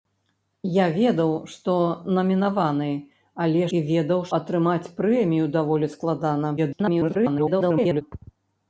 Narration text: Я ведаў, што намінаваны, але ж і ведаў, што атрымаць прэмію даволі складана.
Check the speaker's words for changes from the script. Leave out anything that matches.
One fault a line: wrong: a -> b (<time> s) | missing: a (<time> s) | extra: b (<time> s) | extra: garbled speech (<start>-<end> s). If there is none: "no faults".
missing: ж (3.6 s)
missing: што (4.2 s)
extra: garbled speech (6.6-8.0 s)